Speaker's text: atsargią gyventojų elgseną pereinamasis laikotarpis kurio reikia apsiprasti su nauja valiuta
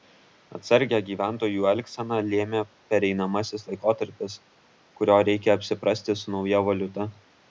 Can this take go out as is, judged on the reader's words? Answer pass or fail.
fail